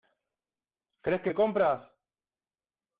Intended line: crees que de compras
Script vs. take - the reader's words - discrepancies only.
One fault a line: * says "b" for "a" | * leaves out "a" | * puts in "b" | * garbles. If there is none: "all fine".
all fine